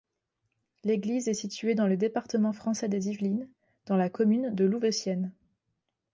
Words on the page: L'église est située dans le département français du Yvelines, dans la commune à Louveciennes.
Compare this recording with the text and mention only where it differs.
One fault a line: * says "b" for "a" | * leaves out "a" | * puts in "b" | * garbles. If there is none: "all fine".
* says "des" for "du"
* says "de" for "à"